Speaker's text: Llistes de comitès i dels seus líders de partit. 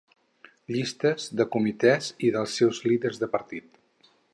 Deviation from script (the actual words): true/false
false